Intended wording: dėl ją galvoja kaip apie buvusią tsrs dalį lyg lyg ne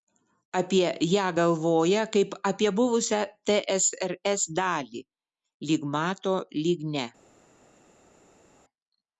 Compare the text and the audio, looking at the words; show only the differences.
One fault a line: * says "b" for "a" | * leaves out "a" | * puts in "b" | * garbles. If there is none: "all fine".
* says "apie" for "dėl"
* puts in "mato"